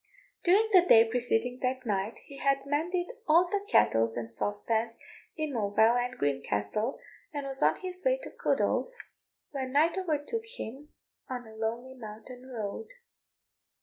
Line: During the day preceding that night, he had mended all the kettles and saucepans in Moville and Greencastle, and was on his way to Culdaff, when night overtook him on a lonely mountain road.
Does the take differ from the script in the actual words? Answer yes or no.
no